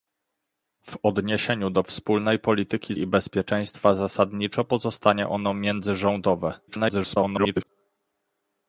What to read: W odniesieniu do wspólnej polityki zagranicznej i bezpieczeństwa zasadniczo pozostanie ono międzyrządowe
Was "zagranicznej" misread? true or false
true